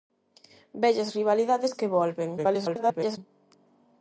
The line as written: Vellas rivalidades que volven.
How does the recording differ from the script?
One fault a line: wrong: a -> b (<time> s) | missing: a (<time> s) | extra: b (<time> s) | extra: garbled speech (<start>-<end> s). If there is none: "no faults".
extra: garbled speech (2.4-3.2 s)